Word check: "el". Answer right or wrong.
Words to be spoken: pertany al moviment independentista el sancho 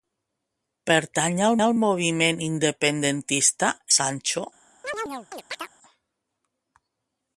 wrong